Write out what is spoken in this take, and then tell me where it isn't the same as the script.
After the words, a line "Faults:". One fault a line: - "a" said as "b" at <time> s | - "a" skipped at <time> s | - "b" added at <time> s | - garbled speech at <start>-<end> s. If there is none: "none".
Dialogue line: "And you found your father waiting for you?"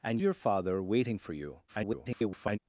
"And your father waiting for you?" [garbled]
Faults:
- "you found" skipped at 0.2 s
- garbled speech at 1.7-2.6 s